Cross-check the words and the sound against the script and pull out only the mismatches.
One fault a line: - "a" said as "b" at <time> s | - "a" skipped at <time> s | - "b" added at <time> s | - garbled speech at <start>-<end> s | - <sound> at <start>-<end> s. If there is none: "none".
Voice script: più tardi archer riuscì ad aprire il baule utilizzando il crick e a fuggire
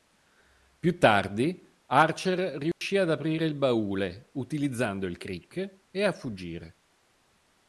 - dropout at 2.7-2.8 s